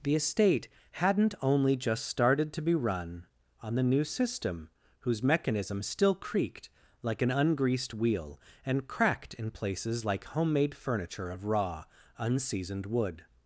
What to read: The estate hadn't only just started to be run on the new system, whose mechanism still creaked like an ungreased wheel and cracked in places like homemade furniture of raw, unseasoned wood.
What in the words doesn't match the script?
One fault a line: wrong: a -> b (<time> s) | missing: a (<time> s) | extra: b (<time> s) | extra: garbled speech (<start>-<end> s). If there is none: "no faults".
no faults